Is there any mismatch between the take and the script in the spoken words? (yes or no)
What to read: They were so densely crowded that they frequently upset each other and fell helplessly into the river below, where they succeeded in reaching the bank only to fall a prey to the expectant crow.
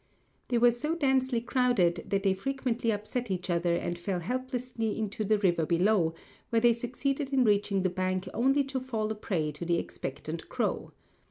no